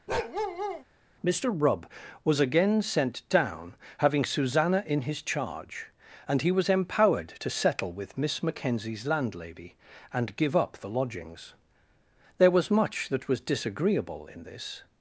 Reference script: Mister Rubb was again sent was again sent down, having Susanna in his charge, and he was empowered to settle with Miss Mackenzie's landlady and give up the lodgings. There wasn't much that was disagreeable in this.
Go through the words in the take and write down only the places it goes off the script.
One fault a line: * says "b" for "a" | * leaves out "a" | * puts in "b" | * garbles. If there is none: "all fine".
* leaves out "was again sent"
* says "was" for "wasn't"